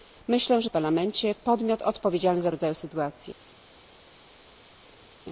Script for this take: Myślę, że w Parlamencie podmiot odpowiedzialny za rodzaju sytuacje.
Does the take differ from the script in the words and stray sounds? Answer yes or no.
no